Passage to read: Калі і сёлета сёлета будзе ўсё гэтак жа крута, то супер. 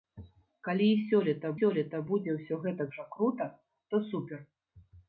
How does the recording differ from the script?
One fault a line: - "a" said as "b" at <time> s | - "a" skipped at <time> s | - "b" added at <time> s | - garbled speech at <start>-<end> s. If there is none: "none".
none